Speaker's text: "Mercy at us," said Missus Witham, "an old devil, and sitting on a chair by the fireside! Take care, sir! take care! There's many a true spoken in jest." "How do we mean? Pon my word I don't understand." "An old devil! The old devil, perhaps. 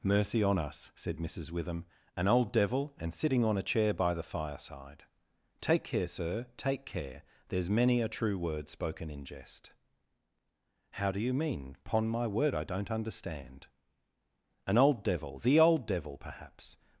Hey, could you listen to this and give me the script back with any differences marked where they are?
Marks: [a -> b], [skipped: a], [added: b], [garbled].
"Mercy [at -> on] us," said Missus Witham, "an old devil, and sitting on a chair by the fireside! Take care, sir! take care! There's many a true [added: word] spoken in jest." "How do [we -> you] mean? Pon my word I don't understand." "An old devil! The old devil, perhaps.